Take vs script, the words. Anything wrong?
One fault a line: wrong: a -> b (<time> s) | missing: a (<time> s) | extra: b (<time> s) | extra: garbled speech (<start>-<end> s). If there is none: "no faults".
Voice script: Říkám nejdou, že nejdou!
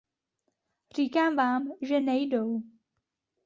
wrong: nejdou -> vám (1.4 s)